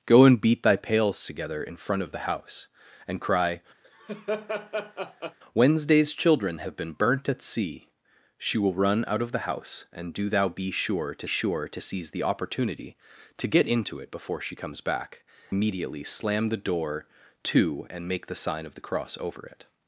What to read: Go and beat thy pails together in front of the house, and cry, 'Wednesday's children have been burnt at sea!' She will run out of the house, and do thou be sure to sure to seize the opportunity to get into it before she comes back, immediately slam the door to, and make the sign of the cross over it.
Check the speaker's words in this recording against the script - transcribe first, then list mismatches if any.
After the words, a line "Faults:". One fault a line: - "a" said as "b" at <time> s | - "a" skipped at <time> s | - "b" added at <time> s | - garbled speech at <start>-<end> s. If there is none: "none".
Go and beat thy pails together in front of the house, and cry, 'Wednesday's children have been burnt at sea!' She will run out of the house, and do thou be sure to sure to seize the opportunity to get into it before she comes back, immediately slam the door to, and make the sign of the cross over it.
Faults:
none